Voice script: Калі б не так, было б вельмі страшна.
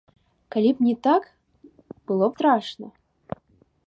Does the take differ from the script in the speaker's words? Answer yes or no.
yes